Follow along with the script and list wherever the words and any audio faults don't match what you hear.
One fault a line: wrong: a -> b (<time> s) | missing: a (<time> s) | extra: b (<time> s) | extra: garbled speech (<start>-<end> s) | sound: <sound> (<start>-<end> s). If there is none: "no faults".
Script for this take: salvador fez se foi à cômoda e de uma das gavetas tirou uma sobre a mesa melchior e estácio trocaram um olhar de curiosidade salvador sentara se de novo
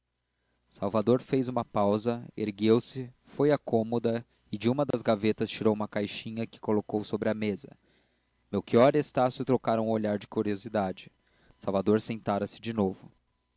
extra: uma pausa ergueu (1.5 s)
sound: dropout (4.9-4.9 s)
extra: caixinha que colocou (5.9 s)